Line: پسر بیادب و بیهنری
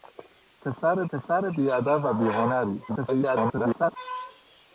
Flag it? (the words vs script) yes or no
yes